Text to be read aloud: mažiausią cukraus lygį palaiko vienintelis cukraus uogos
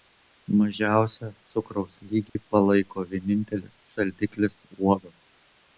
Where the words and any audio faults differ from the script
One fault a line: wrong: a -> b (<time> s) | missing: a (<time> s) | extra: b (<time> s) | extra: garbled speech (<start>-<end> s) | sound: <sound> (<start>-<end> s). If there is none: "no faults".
sound: dropout (2.3-2.4 s)
wrong: cukraus -> saldiklis (4.0 s)